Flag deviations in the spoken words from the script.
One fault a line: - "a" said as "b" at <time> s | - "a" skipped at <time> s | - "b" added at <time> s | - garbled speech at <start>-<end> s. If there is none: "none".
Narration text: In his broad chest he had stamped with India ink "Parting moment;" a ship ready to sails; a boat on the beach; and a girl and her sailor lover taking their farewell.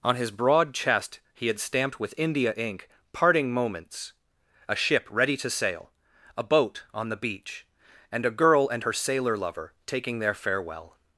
- "In" said as "On" at 0.0 s
- "moment" said as "moments" at 3.5 s
- "sails" said as "sail" at 5.5 s